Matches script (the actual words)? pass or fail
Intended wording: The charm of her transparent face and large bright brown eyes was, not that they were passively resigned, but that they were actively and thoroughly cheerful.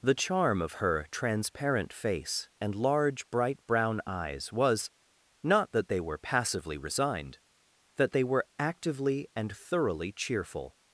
fail